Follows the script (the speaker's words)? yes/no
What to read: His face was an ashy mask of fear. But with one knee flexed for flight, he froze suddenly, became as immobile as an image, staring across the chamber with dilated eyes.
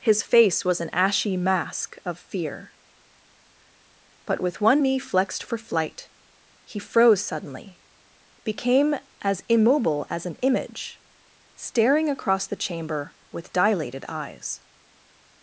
yes